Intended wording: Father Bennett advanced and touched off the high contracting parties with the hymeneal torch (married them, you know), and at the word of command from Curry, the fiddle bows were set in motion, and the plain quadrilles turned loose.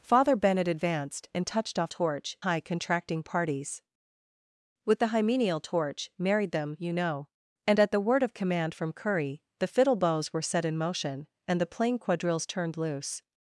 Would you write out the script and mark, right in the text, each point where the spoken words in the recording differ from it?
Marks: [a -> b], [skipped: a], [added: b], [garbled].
Father Bennett advanced and touched off [the -> torch] high contracting parties with the hymeneal torch (married them, you know), and at the word of command from Curry, the fiddle bows were set in motion, and the plain quadrilles turned loose.